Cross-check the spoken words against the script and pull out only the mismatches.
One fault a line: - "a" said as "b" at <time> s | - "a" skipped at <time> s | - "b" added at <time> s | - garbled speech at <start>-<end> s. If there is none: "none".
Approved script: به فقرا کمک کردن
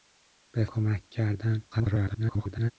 - "فقرا" skipped at 0.7 s
- garbled speech at 1.7-2.7 s